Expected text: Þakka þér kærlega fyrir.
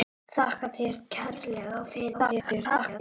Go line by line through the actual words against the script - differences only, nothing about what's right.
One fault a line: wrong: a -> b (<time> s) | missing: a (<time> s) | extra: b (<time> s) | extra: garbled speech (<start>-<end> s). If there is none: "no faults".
extra: garbled speech (2.1-3.0 s)